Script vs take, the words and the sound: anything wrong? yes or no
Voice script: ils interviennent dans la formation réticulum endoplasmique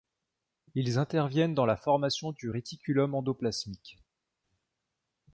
yes